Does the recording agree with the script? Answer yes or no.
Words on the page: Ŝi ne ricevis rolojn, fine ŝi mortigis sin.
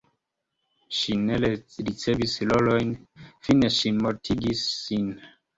yes